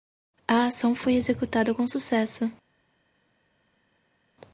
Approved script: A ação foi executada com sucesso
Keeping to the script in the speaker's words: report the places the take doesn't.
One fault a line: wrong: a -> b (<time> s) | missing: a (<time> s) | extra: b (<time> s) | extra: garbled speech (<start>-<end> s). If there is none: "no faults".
no faults